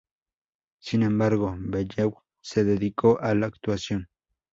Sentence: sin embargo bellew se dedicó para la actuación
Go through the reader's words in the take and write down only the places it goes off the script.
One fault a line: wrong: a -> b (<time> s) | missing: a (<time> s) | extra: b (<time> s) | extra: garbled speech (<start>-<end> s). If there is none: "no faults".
wrong: para -> a (3.2 s)